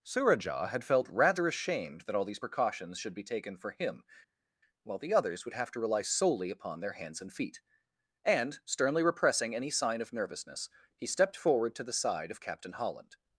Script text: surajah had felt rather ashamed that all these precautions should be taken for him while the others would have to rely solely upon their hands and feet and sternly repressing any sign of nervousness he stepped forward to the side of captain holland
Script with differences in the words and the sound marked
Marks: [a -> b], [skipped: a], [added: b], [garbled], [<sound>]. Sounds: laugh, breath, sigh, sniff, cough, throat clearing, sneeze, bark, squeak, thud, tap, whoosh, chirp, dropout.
surajah had felt rather ashamed that all these precautions should be taken for him while the others would have to rely solely upon their hands and feet and sternly repressing any sign of nervousness he stepped forward to the side of captain holland